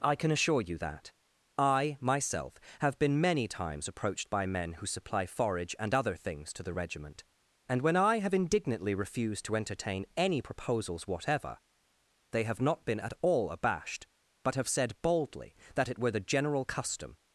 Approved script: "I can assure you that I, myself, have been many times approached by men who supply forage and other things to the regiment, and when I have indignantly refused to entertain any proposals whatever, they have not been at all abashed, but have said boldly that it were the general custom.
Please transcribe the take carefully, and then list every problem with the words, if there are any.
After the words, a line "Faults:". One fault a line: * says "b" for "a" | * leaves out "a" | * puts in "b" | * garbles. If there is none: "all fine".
"I can assure you that I, myself, have been many times approached by men who supply forage and other things to the regiment, and when I have indignantly refused to entertain any proposals whatever, they have not been at all abashed, but have said boldly that it were the general custom.
Faults:
all fine